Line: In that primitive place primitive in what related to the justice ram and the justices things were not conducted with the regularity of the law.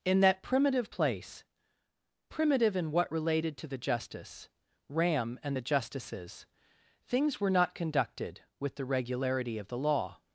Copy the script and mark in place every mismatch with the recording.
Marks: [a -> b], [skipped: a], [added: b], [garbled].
In that primitive place primitive in what related to the justice ram and the justices things were not conducted with the regularity of the law.